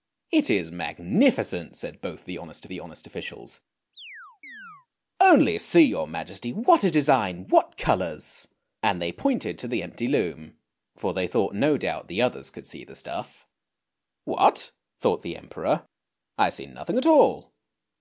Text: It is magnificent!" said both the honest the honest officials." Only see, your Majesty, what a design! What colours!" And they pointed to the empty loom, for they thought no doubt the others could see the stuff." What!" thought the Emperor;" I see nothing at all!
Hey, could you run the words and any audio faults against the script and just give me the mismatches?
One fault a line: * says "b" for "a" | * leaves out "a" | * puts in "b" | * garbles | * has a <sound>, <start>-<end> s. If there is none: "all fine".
* has a chirp, 3.9-4.9 s